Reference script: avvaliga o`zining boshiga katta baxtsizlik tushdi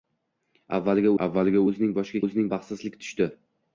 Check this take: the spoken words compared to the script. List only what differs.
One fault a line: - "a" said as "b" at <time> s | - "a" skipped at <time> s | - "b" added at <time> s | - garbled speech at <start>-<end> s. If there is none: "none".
- "avvaliga" added at 1.3 s
- "katta" said as "o`zining" at 2.2 s